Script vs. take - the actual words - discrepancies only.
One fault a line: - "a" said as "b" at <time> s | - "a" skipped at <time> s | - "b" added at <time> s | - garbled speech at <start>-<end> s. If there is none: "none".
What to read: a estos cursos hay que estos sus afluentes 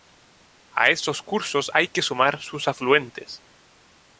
- "estos" said as "sumar" at 2.0 s